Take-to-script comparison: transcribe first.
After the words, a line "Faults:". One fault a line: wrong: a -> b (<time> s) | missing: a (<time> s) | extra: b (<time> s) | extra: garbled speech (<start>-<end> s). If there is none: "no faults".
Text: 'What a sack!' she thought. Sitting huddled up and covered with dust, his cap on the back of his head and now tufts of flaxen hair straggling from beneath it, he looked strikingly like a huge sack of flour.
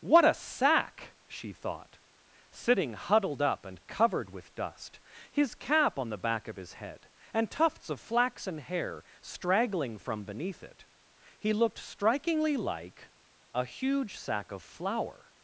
'What a sack!' she thought. Sitting huddled up and covered with dust, his cap on the back of his head and tufts of flaxen hair straggling from beneath it, he looked strikingly like a huge sack of flour.
Faults:
missing: now (7.5 s)